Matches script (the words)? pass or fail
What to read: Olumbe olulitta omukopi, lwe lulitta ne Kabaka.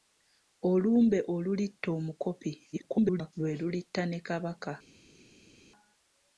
fail